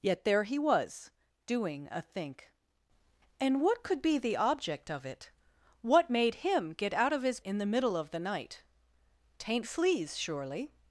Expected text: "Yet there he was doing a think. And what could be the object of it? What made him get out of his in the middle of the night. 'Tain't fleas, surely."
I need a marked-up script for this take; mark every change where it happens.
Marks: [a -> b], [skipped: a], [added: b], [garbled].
"Yet there he was doing a think. And what could be the object of it? What made him get out of his in the middle of the night. 'Tain't fleas, surely."